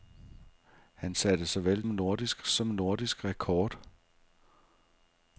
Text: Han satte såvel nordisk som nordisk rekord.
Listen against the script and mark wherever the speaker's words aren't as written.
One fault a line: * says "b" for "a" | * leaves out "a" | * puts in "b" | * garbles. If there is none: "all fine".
all fine